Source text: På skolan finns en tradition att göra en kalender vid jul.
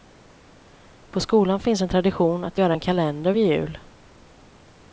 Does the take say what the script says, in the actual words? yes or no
yes